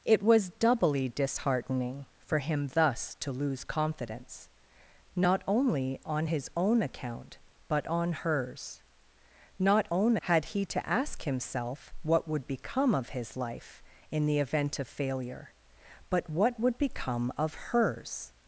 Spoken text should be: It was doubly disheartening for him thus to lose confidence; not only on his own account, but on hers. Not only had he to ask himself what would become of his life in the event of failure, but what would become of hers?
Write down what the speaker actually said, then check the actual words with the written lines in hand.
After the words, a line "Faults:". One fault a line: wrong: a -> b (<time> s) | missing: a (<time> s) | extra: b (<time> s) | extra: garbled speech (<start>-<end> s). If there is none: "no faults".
It was doubly disheartening for him thus to lose confidence; not only on his own account, but on hers. Not own had he to ask himself what would become of his life in the event of failure, but what would become of hers?
Faults:
wrong: only -> own (9.9 s)